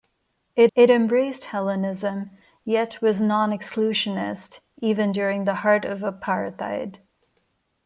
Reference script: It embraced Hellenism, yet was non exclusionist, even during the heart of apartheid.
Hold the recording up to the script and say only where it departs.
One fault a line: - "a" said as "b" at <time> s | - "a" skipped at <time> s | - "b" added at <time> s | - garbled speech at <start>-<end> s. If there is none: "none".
- "it" added at 0.7 s